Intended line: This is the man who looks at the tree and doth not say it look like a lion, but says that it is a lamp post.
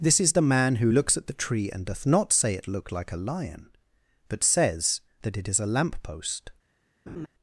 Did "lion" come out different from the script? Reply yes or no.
no